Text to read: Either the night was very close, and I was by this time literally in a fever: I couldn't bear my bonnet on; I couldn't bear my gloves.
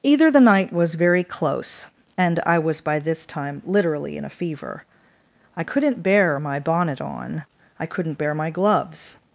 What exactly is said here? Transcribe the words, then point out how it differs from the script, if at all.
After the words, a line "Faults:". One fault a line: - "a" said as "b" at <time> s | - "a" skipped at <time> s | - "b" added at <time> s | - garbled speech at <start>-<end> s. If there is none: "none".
Either the night was very close, and I was by this time literally in a fever: I couldn't bear my bonnet on; I couldn't bear my gloves.
Faults:
none